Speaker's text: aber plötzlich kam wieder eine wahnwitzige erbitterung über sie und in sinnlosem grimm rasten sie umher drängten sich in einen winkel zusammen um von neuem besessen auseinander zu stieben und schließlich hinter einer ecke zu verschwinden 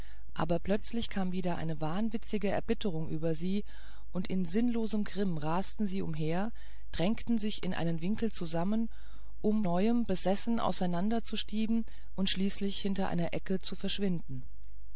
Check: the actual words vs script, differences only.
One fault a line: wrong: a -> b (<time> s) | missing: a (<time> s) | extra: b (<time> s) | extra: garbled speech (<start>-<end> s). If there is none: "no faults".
missing: von (9.6 s)